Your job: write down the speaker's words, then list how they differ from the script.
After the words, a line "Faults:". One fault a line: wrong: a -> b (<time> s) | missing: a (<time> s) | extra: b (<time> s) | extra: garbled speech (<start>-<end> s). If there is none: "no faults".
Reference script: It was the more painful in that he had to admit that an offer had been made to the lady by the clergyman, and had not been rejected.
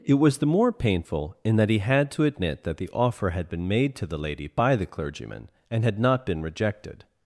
It was the more painful in that he had to admit that the offer had been made to the lady by the clergyman, and had not been rejected.
Faults:
wrong: an -> the (2.8 s)